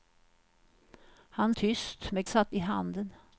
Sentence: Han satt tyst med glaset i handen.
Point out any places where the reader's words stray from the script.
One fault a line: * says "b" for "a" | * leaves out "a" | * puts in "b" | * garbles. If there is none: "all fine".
* leaves out "satt"
* says "satt" for "glaset"